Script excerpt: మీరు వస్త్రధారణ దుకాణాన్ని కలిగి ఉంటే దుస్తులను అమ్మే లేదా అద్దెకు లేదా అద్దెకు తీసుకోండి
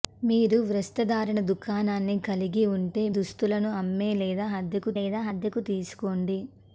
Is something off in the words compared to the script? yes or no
no